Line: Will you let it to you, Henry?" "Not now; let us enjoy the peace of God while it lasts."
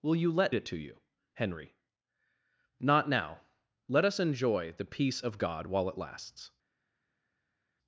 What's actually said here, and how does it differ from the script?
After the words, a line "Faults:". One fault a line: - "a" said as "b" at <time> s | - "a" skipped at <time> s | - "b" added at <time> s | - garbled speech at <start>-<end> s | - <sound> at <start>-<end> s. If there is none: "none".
Will you let it to you, Henry?" "Not now; let us enjoy the peace of God while it lasts."
Faults:
none